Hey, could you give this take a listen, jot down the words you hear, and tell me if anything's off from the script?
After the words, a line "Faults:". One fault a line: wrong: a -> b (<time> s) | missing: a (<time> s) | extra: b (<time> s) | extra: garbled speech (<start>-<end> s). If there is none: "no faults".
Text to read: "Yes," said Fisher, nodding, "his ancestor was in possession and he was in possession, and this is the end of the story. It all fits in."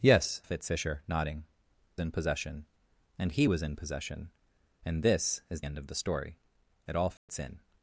"Yes," fits Fisher, nodding, "in possession and he was in possession, and this is end of the story. It all fits in."
Faults:
wrong: said -> fits (0.4 s)
missing: his ancestor was (1.4 s)
missing: the (5.6 s)